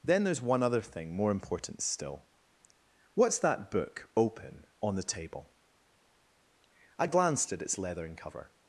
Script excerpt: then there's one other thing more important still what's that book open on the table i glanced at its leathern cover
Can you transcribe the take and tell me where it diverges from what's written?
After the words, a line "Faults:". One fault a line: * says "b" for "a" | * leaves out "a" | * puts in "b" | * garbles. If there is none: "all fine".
then there's one other thing more important still what's that book open on the table i glanced at its leathern cover
Faults:
all fine